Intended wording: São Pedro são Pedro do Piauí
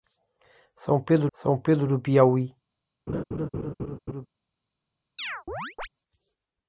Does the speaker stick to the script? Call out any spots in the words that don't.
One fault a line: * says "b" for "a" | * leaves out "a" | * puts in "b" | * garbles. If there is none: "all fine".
all fine